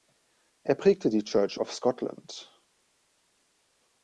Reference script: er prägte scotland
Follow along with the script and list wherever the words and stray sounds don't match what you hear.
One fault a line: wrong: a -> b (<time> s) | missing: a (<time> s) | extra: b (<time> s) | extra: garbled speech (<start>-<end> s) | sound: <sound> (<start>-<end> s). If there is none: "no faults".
extra: die church of (1.1 s)